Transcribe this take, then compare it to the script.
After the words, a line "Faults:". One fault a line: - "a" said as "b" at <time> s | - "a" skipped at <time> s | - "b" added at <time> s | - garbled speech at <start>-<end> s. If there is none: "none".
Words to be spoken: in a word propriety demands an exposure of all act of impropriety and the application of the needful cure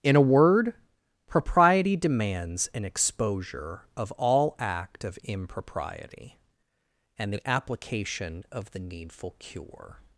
in a word propriety demands an exposure of all act of impropriety and the application of the needful cure
Faults:
none